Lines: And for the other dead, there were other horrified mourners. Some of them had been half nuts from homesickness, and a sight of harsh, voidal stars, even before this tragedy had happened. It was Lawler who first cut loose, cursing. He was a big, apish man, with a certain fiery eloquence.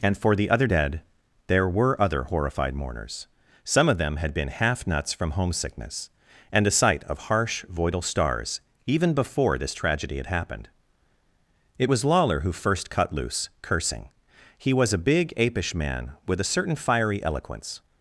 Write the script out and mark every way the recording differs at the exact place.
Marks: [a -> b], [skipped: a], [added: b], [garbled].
And for the other dead, there were other horrified mourners. Some of them had been half nuts from homesickness, and a sight of harsh, voidal stars, even before this tragedy had happened. It was Lawler who first cut loose, cursing. He was a big, apish man, with a certain fiery eloquence.